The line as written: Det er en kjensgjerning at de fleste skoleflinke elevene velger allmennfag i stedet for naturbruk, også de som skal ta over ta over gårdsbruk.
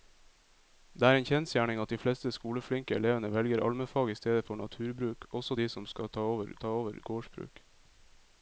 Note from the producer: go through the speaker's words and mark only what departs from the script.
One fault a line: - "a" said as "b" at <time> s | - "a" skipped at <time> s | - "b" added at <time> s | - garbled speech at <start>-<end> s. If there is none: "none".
none